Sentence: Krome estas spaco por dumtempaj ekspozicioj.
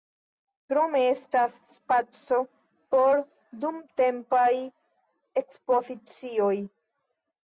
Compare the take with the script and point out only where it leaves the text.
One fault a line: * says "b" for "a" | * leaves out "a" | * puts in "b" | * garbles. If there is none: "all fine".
all fine